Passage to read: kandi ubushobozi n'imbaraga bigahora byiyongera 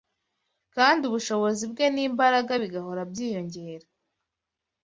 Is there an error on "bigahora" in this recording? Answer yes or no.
no